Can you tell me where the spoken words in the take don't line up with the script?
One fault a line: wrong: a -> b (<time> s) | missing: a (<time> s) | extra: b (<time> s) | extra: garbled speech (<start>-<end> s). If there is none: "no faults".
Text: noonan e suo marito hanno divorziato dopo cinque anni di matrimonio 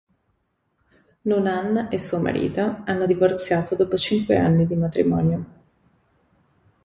no faults